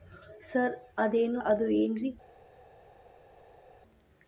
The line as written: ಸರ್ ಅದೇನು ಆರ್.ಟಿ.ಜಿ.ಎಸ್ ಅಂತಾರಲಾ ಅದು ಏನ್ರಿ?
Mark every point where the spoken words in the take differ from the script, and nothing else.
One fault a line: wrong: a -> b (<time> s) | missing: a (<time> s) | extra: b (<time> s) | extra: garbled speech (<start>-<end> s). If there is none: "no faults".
missing: ಆರ್.ಟಿ.ಜಿ.ಎಸ್ ಅಂತಾರಲಾ (1.4 s)